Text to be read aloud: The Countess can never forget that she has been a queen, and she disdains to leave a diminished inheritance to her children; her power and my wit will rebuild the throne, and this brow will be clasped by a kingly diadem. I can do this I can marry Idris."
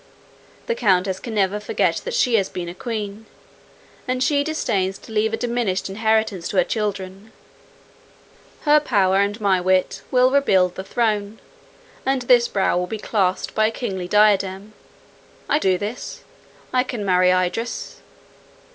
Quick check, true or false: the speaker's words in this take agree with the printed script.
false